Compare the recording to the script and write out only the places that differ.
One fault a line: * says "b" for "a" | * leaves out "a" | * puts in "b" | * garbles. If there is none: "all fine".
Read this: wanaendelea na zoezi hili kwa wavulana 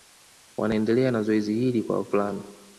all fine